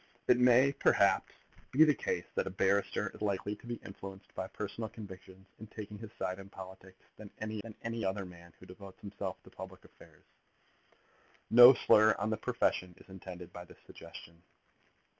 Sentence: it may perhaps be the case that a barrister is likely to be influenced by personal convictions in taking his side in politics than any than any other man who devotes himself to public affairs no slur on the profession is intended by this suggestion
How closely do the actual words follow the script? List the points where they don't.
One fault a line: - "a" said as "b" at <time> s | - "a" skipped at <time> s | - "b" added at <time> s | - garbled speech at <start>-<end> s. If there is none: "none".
none